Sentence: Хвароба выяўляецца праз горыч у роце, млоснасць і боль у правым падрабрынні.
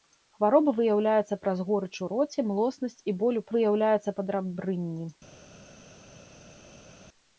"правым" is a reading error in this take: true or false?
true